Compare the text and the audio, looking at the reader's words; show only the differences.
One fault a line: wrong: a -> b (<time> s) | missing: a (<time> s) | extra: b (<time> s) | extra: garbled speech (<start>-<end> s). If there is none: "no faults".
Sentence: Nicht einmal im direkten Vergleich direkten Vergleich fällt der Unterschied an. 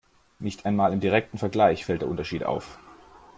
missing: direkten Vergleich (1.8 s)
wrong: an -> auf (2.5 s)